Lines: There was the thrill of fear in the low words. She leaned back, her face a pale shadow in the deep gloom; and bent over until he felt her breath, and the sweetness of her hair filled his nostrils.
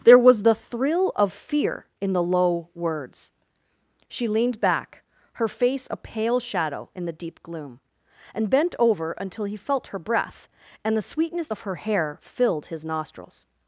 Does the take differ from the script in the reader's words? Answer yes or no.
no